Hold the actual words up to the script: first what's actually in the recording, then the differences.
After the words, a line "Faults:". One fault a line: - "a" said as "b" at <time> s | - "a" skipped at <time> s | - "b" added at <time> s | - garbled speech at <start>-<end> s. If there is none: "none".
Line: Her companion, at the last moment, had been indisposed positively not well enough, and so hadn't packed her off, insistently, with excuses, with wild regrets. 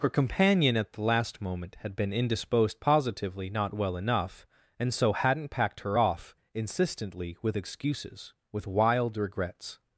Her companion, at the last moment, had been indisposed positively not well enough, and so hadn't packed her off, insistently, with excuses, with wild regrets.
Faults:
none